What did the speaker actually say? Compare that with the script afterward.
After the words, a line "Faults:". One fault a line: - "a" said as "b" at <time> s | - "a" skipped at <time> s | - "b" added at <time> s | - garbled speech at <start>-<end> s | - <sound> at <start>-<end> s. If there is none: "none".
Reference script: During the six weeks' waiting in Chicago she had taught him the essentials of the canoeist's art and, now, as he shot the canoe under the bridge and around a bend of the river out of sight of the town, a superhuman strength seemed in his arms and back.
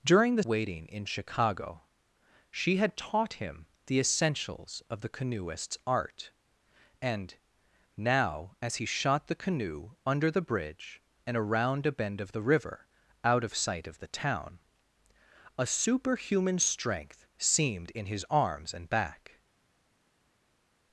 During the' waiting in Chicago she had taught him the essentials of the canoeist's art and, now, as he shot the canoe under the bridge and around a bend of the river out of sight of the town, a superhuman strength seemed in his arms and back.
Faults:
- "six weeks" skipped at 0.4 s